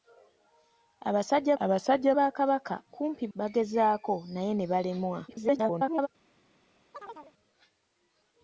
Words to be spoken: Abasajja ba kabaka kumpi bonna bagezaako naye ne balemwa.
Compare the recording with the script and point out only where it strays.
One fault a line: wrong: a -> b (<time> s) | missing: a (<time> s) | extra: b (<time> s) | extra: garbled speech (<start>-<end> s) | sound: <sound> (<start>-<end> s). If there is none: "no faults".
extra: abasajja (1.6 s)
missing: bonna (3.2 s)
extra: garbled speech (5.3-6.1 s)
sound: chirp (6.9-7.3 s)